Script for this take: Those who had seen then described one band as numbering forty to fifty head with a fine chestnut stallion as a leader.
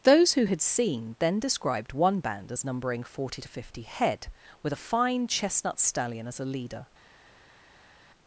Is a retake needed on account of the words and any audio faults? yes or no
no